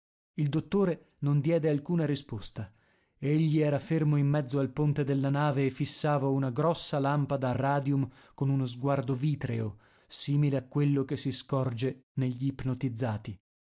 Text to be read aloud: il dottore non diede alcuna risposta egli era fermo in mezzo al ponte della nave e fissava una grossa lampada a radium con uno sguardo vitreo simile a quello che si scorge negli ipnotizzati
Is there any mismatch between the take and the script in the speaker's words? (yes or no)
no